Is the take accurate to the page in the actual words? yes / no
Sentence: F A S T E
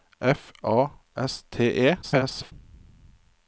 no